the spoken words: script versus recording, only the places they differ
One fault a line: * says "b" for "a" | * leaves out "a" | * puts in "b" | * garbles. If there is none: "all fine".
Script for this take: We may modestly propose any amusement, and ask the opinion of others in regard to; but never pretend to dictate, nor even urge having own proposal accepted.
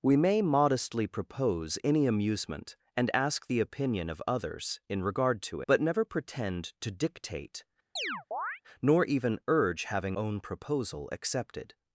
all fine